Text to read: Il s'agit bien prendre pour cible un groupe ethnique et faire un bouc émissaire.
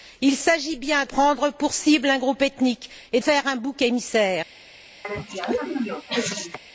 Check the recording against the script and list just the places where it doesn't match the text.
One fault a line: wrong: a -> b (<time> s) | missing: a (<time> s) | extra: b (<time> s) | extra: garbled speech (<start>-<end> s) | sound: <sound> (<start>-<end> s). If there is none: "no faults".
sound: cough (5.0-6.6 s)